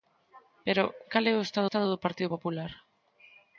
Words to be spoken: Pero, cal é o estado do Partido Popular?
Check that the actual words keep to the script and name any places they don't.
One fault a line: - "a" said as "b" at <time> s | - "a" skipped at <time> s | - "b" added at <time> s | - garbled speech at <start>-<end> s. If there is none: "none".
- "estado" added at 1.7 s